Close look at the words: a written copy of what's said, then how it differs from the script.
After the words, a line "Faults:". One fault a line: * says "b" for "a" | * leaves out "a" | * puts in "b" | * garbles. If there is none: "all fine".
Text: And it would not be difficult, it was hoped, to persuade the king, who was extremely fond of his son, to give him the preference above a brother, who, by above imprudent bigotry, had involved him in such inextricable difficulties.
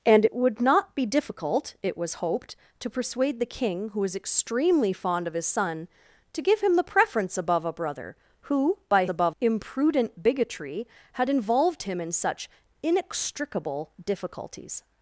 And it would not be difficult, it was hoped, to persuade the king, who was extremely fond of his son, to give him the preference above a brother, who, by above imprudent bigotry, had involved him in such inextricable difficulties.
Faults:
all fine